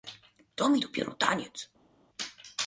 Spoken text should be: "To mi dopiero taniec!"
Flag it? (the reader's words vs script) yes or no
no